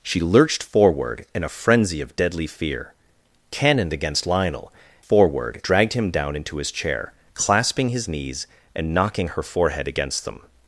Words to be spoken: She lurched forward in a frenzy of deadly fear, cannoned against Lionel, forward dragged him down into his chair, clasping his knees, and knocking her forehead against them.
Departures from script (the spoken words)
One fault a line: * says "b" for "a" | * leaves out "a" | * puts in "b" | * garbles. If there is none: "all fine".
all fine